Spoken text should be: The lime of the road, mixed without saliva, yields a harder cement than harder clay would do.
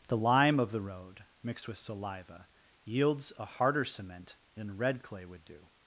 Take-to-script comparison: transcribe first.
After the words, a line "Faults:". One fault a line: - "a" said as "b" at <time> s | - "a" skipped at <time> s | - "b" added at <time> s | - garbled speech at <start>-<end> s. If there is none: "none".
The lime of the road, mixed with saliva, yields a harder cement than red clay would do.
Faults:
- "without" said as "with" at 1.7 s
- "harder" said as "red" at 4.8 s